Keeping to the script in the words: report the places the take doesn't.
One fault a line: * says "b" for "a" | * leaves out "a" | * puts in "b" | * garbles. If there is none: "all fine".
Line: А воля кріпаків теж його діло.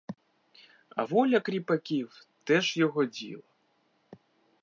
all fine